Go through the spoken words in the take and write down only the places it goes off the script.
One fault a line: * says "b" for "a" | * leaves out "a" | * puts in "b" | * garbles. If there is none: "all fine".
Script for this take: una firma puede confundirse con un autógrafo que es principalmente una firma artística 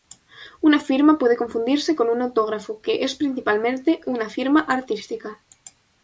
all fine